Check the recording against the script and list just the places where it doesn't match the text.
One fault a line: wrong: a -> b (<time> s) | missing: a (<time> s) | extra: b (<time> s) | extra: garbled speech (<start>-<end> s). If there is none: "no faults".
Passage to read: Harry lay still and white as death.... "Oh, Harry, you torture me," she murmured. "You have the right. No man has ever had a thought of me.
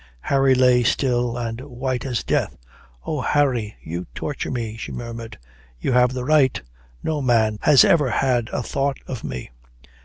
no faults